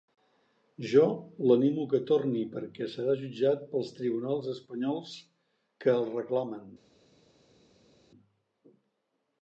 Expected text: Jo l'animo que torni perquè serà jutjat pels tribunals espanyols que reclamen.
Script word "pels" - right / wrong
right